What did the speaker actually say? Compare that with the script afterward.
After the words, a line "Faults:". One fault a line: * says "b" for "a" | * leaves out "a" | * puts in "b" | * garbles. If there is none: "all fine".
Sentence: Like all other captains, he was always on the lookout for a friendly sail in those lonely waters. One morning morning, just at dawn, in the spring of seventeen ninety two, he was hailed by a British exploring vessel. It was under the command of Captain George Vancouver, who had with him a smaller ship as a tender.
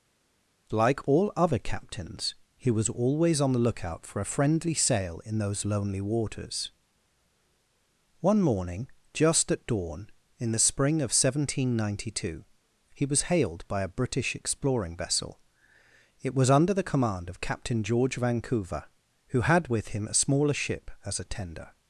Like all other captains, he was always on the lookout for a friendly sail in those lonely waters. One morning, just at dawn, in the spring of seventeen ninety two, he was hailed by a British exploring vessel. It was under the command of Captain George Vancouver, who had with him a smaller ship as a tender.
Faults:
* leaves out "morning"